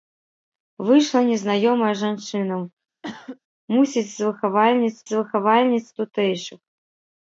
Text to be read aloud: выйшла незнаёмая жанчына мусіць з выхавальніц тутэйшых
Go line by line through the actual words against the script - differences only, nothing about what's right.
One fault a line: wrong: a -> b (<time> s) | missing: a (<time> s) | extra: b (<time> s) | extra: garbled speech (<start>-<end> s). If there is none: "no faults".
extra: з выхавальніц (5.1 s)